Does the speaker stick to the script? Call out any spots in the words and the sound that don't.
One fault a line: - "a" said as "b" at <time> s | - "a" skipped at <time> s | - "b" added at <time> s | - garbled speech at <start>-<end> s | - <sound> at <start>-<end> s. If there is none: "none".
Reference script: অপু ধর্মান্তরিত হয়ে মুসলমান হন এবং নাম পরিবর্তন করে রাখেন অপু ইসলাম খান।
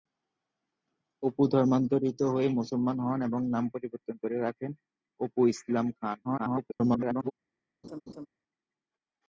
- garbled speech at 6.2-7.3 s
- laugh at 7.8-8.3 s